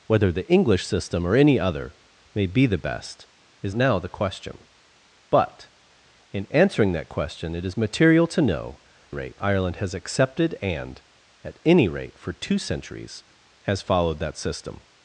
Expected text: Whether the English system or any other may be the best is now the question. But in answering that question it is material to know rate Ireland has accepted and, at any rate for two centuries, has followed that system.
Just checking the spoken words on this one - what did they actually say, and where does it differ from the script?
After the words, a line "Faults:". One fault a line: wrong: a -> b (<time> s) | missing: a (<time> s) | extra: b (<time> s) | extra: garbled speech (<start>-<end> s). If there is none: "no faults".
Whether the English system or any other may be the best is now the question. But in answering that question it is material to know rate Ireland has accepted and, at any rate for two centuries, has followed that system.
Faults:
no faults